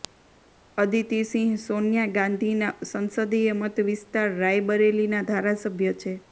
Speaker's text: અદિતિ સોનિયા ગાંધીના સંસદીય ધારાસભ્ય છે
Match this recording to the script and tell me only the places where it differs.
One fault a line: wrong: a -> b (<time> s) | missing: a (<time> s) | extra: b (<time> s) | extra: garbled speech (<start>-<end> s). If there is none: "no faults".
extra: સિંહ (1.3 s)
extra: મત વિસ્તાર રાયબરેલીના (3.6 s)